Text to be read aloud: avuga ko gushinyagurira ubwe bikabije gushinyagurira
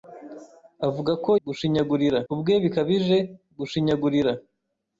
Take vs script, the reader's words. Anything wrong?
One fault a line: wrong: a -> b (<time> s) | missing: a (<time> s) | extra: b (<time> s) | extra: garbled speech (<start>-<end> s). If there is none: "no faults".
no faults